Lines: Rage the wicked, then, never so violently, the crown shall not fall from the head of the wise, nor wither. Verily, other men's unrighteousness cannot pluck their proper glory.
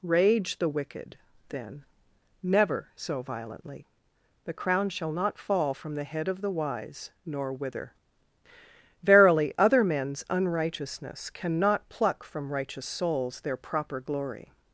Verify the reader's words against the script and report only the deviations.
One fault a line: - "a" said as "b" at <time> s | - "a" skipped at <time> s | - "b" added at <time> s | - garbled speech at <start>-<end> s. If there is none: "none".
- "from righteous souls" added at 12.2 s